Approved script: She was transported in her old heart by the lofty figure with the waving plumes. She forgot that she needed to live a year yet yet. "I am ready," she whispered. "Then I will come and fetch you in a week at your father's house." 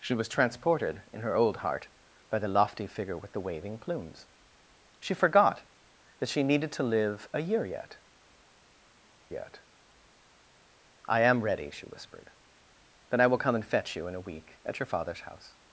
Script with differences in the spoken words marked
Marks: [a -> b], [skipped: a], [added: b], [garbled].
She was transported in her old heart by the lofty figure with the waving plumes. She forgot that she needed to live a year yet yet. "I am ready," she whispered. "Then I will come and fetch you in a week at your father's house."